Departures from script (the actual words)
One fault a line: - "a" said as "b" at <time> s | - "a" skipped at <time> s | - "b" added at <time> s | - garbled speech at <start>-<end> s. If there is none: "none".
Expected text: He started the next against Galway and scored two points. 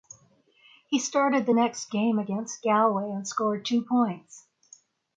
- "game" added at 1.9 s